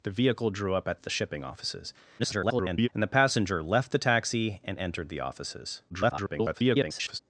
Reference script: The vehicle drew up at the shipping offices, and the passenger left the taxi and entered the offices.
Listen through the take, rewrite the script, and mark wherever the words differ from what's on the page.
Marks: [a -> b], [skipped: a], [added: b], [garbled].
The vehicle drew up at the shipping offices, [garbled] and the passenger left the taxi and entered the offices. [garbled]